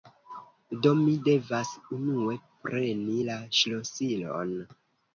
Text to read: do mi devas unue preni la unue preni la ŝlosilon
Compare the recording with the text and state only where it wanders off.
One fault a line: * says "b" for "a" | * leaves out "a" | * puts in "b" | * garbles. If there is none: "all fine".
* leaves out "unue preni la"